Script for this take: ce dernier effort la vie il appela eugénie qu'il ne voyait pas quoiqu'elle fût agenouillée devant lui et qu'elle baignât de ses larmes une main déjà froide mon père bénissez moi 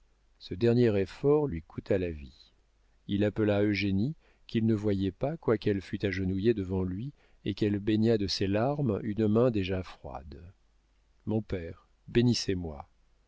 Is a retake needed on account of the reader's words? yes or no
yes